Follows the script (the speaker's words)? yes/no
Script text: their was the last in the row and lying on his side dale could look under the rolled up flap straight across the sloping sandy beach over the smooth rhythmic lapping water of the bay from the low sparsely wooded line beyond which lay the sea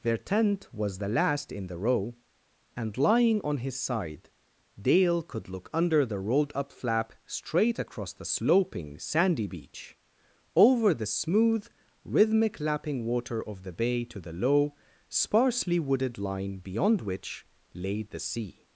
no